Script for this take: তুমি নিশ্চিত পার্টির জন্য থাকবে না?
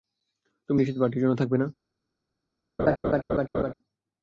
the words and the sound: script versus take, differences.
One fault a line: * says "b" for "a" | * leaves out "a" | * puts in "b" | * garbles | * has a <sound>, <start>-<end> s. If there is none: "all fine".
* has a laugh, 2.8-3.7 s